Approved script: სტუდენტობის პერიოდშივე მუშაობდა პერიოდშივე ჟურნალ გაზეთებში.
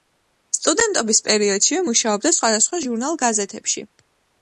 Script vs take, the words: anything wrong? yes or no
yes